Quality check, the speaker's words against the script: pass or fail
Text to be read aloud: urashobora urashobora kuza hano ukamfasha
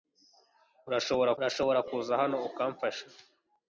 pass